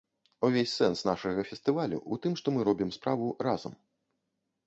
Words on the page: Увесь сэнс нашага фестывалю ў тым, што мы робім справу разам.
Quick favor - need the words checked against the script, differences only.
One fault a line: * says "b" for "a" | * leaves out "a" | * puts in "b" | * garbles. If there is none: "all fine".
all fine